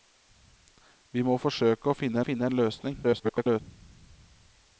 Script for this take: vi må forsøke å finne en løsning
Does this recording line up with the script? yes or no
no